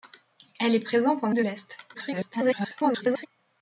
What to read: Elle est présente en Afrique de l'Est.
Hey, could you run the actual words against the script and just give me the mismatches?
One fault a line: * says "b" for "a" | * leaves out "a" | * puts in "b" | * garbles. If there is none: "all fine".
* leaves out "Afrique"
* garbles